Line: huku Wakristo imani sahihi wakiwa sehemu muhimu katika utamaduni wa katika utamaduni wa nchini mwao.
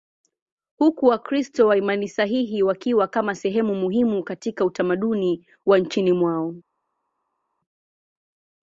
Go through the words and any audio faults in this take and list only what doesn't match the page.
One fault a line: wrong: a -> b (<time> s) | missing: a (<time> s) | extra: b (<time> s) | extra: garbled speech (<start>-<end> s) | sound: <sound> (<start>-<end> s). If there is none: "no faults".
extra: wa (1.7 s)
extra: kama (3.1 s)
missing: katika utamaduni wa (5.8 s)